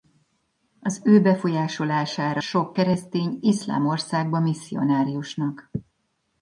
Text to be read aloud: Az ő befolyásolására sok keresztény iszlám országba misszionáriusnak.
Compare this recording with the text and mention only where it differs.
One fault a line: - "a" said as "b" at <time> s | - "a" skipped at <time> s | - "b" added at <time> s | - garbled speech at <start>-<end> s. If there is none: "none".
none